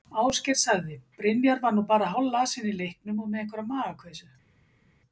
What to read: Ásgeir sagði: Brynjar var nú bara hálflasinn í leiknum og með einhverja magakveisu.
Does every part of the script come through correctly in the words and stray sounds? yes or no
yes